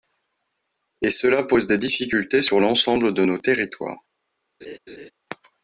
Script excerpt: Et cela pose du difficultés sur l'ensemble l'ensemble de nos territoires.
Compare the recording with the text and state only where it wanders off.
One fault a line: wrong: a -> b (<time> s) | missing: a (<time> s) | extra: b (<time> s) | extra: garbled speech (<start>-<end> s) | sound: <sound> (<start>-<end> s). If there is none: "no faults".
wrong: du -> des (1.7 s)
missing: l'ensemble (3.1 s)
sound: laugh (4.6-5.1 s)